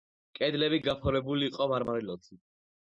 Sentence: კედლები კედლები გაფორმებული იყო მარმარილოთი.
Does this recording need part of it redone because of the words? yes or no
yes